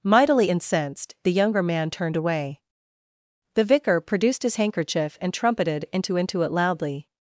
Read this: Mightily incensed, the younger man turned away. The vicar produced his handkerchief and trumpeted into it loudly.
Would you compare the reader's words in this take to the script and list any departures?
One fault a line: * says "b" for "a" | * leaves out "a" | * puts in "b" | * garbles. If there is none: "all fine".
* puts in "into"